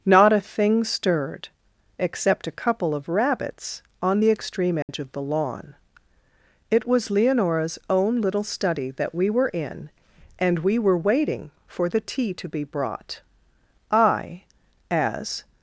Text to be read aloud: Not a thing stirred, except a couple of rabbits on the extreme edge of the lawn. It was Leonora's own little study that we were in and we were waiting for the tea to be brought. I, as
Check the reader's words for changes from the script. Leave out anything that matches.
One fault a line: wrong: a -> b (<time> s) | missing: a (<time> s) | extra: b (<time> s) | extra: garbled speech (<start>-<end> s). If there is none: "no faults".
no faults